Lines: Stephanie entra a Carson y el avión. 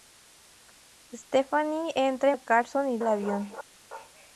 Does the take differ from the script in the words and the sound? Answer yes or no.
no